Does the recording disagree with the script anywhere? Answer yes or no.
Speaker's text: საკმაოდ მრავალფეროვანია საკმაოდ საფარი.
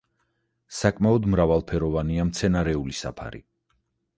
yes